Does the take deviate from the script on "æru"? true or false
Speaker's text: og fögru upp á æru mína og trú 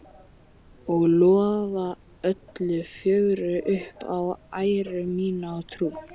false